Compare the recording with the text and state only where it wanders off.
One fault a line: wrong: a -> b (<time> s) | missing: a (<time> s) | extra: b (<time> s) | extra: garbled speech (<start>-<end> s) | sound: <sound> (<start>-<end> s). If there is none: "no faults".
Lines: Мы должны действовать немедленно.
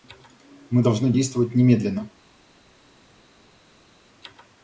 no faults